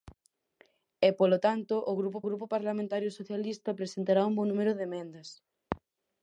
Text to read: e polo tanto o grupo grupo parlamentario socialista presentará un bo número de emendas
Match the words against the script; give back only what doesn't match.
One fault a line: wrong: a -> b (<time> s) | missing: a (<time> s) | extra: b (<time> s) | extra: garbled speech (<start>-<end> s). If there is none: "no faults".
no faults